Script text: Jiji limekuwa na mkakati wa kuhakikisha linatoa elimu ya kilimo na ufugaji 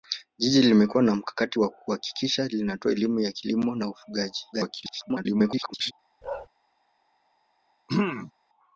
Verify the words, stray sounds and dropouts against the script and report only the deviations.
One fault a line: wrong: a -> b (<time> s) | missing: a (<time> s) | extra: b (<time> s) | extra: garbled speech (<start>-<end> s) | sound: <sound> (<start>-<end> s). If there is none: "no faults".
extra: garbled speech (4.5-5.9 s)
sound: bark (6.2-6.5 s)
sound: throat clearing (7.9-8.3 s)